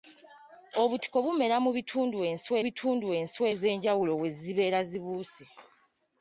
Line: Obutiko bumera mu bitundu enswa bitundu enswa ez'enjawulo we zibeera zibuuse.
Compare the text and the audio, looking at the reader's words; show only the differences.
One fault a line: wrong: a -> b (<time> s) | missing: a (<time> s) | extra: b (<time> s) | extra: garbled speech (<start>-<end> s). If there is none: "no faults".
no faults